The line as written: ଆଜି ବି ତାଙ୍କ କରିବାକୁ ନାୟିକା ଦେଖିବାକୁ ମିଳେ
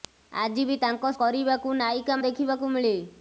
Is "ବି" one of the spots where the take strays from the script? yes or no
no